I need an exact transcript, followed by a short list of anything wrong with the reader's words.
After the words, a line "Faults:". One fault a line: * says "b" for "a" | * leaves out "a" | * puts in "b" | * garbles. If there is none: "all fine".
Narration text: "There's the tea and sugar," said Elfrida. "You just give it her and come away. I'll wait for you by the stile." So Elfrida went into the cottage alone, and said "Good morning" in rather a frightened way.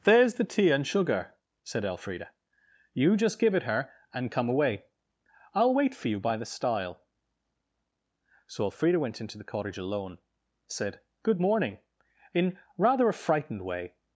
"There's the tea and sugar," said Elfrida. "You just give it her and come away. I'll wait for you by the stile." So Elfrida went into the cottage alone, said "Good morning" in rather a frightened way.
Faults:
* leaves out "and"